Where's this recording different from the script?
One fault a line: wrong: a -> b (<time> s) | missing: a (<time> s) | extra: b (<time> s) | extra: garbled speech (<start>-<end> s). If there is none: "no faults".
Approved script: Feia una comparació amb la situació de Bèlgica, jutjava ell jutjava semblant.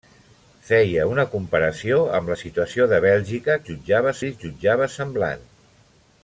no faults